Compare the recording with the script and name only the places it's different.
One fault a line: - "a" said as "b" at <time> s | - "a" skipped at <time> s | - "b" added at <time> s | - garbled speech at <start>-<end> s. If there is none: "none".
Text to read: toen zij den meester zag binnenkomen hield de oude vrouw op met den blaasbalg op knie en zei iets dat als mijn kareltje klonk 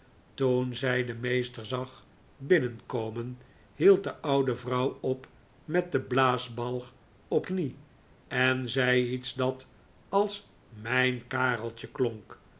none